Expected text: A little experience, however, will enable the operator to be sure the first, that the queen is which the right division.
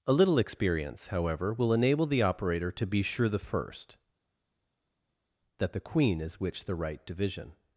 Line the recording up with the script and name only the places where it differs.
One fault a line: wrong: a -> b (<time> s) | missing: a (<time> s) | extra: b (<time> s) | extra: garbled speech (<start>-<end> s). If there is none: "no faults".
no faults